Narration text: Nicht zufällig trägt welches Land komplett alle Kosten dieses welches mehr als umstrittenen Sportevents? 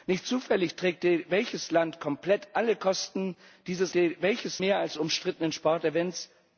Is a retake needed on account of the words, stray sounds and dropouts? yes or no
no